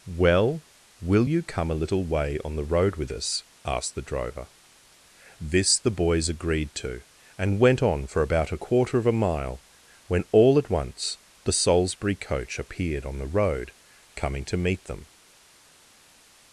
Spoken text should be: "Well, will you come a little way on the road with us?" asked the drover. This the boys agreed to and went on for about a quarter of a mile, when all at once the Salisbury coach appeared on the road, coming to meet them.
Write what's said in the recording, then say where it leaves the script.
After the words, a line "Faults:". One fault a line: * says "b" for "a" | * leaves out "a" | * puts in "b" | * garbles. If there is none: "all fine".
"Well, will you come a little way on the road with us?" asked the drover. This the boys agreed to and went on for about a quarter of a mile, when all at once the Salisbury coach appeared on the road, coming to meet them.
Faults:
all fine